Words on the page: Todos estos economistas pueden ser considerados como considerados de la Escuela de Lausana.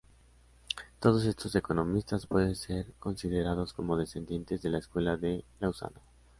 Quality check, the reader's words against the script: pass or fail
fail